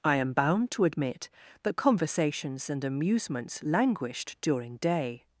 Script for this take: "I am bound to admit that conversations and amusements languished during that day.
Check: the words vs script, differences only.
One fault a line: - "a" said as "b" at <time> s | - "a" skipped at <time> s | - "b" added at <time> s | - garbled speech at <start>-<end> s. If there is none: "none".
- "that" skipped at 4.8 s